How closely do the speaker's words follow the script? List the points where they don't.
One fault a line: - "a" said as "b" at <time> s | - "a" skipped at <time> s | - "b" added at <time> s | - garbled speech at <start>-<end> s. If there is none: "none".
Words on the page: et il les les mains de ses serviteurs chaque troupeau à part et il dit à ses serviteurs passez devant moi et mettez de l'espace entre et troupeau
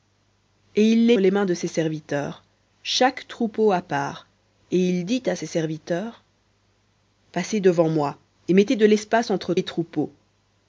none